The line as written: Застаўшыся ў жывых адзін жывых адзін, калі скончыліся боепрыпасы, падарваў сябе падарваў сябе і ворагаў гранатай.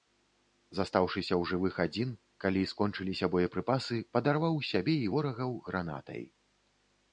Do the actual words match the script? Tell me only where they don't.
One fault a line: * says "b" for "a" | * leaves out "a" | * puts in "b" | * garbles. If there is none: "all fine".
* leaves out "жывых адзін"
* leaves out "падарваў сябе"